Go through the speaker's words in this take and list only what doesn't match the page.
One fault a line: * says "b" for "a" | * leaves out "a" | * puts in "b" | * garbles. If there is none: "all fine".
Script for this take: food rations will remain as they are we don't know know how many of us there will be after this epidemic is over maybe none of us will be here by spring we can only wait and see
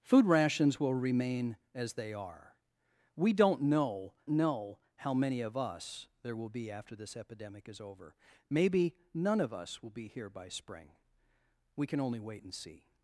all fine